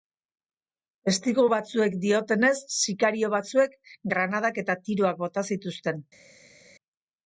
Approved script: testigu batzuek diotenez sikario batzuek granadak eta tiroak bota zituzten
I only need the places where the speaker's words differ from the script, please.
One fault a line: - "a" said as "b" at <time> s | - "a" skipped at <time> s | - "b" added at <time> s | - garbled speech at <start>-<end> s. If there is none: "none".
none